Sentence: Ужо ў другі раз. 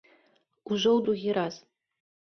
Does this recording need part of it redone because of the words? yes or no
no